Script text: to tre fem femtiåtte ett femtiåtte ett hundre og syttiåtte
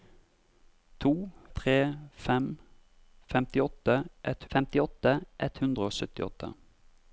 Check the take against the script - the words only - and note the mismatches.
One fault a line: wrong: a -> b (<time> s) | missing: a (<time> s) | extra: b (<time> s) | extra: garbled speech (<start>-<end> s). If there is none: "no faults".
no faults